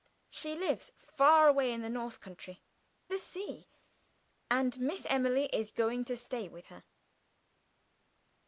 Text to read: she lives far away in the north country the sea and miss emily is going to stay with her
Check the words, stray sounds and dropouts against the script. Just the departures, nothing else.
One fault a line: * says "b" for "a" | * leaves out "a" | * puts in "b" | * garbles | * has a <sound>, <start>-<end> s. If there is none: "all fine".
all fine